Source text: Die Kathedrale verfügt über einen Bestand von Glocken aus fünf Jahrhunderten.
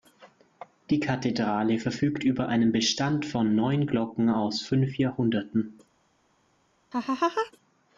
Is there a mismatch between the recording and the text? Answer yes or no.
yes